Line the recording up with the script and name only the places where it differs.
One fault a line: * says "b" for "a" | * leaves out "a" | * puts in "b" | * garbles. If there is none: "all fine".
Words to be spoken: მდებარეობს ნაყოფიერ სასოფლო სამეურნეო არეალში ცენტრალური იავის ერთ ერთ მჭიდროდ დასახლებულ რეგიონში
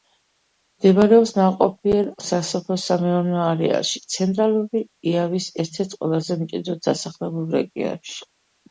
* puts in "ყველაზე"